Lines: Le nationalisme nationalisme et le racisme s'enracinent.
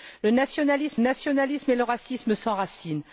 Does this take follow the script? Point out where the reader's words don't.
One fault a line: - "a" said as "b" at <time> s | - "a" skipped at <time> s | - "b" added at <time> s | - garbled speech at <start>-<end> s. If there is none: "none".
none